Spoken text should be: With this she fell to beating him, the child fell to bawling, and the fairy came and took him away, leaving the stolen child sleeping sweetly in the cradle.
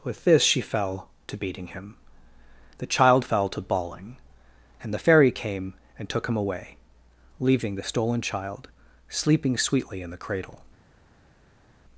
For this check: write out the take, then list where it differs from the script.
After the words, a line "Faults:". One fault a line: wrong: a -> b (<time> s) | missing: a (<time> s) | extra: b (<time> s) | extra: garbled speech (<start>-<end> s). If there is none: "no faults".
With this she fell to beating him, the child fell to bawling, and the fairy came and took him away, leaving the stolen child sleeping sweetly in the cradle.
Faults:
no faults